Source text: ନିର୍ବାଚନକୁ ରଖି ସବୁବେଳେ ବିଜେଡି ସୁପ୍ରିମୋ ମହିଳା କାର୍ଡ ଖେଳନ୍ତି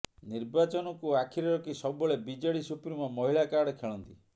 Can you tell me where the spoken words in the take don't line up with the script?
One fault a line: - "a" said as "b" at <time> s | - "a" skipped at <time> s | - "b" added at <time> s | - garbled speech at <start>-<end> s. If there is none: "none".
- "ଆଖିରେ" added at 1.2 s